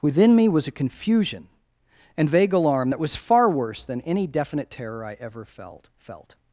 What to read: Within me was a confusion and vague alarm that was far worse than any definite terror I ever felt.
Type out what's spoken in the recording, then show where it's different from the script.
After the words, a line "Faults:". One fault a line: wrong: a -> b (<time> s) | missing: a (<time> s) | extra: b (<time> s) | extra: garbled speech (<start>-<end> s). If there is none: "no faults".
Within me was a confusion and vague alarm that was far worse than any definite terror I ever felt felt.
Faults:
extra: felt (6.0 s)